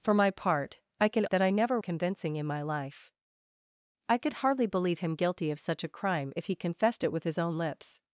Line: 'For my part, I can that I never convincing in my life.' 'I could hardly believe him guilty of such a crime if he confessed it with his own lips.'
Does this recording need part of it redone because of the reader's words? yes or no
no